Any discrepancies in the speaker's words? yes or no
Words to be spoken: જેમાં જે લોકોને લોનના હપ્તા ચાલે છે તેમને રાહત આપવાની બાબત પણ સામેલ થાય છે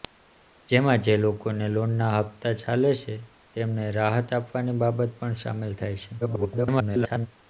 yes